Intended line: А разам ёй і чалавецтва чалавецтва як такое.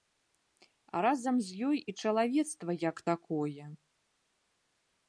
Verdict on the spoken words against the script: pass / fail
fail